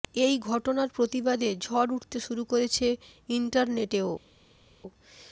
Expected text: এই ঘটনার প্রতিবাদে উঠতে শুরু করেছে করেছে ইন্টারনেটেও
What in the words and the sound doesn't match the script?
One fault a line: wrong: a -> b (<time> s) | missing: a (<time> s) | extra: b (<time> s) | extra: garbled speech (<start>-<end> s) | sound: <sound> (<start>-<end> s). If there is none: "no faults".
extra: ঝড় (1.6 s)
missing: করেছে (2.9 s)